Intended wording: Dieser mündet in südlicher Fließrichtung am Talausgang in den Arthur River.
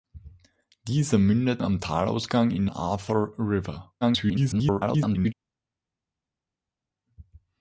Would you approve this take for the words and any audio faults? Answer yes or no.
no